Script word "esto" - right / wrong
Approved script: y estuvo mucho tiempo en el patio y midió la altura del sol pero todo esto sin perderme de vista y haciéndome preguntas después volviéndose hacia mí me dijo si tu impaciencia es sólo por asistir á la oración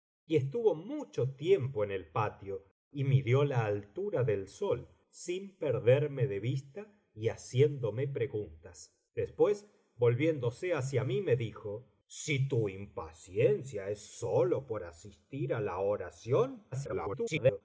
wrong